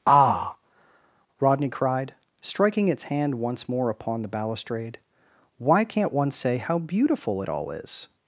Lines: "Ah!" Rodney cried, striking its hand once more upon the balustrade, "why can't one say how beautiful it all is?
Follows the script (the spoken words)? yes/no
yes